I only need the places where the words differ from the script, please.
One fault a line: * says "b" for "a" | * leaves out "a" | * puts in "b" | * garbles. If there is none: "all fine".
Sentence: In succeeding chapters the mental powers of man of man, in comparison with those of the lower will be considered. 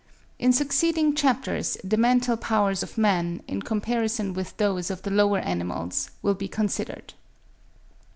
* leaves out "of man"
* puts in "animals"